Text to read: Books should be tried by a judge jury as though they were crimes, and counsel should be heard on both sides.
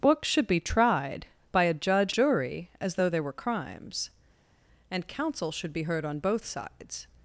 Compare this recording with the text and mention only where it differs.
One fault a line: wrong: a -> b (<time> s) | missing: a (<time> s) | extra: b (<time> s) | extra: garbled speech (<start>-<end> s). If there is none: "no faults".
no faults